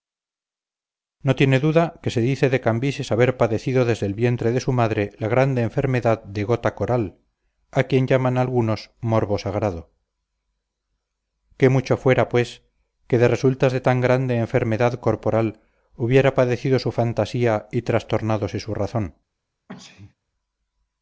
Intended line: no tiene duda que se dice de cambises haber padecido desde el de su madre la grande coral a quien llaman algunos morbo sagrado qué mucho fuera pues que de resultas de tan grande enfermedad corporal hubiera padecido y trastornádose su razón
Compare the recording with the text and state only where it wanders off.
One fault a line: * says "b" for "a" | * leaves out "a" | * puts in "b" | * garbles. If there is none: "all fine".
* puts in "vientre"
* puts in "enfermedad de gota"
* puts in "su fantasía"